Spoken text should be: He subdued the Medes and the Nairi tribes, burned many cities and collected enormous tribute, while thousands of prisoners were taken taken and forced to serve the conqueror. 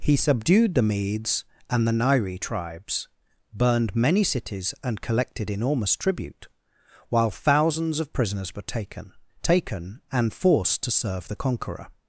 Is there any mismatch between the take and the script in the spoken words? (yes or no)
no